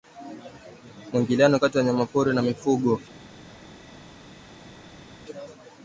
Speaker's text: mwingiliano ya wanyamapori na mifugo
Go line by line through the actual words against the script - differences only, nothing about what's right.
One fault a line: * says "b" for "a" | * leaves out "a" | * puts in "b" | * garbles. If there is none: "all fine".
* puts in "kati"